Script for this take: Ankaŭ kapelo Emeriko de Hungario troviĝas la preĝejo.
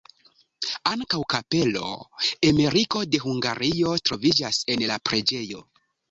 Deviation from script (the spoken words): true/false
true